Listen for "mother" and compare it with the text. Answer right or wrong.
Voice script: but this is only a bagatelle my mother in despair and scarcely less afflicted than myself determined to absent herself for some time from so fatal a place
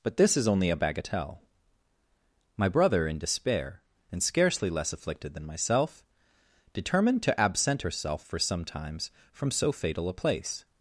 wrong